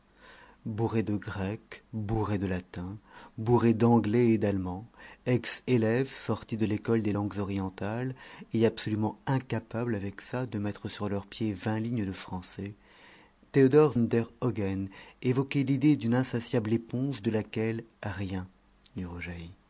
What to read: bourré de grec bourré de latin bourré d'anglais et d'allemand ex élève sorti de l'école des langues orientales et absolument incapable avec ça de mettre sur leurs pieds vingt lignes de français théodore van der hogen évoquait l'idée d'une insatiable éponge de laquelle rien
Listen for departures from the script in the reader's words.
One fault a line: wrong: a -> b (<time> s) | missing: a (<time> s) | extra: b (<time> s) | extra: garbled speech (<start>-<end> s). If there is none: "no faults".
missing: van (13.9 s)